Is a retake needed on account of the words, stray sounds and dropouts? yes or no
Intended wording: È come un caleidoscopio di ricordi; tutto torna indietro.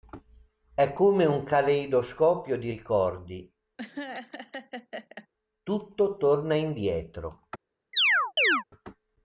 yes